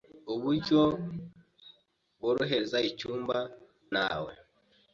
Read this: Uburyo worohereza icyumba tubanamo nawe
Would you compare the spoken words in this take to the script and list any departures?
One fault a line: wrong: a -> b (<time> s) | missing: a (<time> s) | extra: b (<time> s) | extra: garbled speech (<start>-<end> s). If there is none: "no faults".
missing: tubanamo (3.4 s)